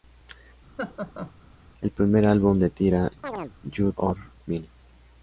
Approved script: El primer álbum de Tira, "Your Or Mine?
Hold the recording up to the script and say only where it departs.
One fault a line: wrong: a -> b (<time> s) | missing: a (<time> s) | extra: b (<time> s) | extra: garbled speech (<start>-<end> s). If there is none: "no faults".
no faults